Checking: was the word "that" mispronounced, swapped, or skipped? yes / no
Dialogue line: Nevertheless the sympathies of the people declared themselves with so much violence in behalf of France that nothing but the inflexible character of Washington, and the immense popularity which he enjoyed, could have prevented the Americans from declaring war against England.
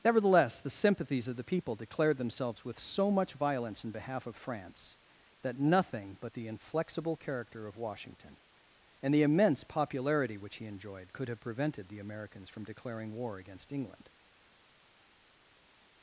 no